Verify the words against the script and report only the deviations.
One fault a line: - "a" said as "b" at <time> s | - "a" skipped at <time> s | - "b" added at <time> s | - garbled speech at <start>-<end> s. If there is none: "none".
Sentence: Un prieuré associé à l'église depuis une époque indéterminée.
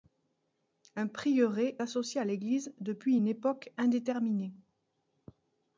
none